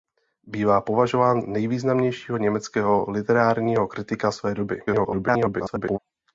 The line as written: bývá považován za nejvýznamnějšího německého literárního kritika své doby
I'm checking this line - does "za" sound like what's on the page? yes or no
no